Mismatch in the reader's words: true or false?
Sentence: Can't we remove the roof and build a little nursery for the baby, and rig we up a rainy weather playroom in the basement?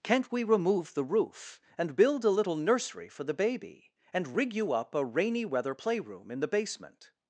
true